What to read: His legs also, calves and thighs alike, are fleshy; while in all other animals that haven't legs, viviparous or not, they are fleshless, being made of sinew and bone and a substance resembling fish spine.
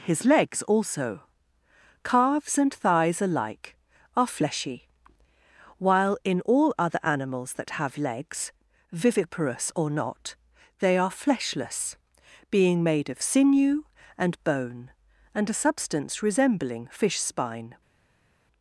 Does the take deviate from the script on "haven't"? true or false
true